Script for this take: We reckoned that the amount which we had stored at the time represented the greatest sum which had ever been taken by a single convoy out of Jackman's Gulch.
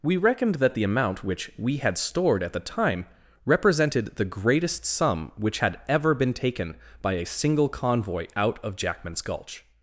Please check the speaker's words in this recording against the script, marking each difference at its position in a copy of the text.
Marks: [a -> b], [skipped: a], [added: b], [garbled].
We reckoned that the amount which we had stored at the time represented the greatest sum which had ever been taken by a single convoy out of Jackman's Gulch.